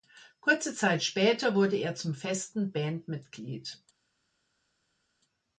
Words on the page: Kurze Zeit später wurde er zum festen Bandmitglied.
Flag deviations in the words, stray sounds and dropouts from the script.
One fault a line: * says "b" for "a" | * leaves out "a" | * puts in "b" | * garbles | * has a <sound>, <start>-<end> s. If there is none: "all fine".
all fine